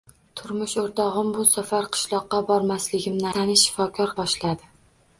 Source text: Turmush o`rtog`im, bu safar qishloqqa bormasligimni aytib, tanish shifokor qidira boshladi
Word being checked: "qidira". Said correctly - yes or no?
no